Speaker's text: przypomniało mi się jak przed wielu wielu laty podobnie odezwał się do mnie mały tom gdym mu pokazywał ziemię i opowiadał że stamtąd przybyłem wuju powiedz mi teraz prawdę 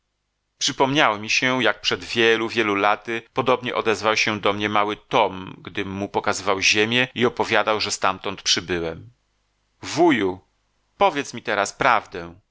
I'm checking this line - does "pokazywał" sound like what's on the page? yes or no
yes